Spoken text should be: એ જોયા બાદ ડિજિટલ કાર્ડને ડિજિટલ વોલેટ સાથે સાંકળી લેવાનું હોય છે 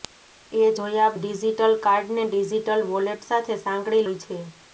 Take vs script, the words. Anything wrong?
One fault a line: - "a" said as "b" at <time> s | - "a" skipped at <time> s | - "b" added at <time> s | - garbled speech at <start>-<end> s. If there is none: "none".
- "બાદ" skipped at 1.1 s
- "લેવાનું" skipped at 4.1 s